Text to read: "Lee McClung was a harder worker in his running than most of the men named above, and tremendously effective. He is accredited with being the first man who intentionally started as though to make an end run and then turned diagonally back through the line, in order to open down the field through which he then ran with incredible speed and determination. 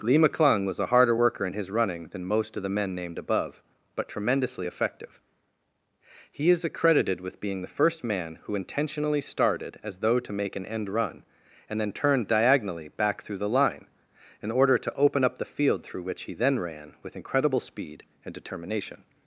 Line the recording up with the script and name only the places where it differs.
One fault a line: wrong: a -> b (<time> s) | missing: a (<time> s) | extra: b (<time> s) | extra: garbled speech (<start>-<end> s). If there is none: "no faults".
wrong: and -> but (4.0 s)
wrong: down -> up (15.2 s)